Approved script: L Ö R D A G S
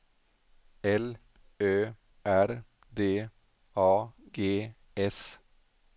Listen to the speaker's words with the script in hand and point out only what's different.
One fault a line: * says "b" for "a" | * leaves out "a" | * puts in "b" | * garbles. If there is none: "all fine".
all fine